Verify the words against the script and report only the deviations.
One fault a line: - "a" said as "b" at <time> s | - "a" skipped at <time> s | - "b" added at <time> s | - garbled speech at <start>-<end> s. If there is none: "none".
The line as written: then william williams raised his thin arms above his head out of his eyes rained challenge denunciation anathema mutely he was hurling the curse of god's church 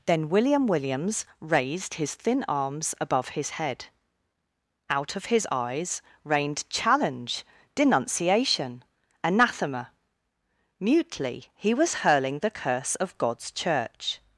none